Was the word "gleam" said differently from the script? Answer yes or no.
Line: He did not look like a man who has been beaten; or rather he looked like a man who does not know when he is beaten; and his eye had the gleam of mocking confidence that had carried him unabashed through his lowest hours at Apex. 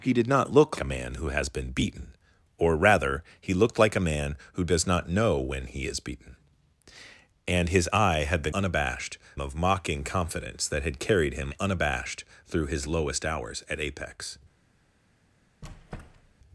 yes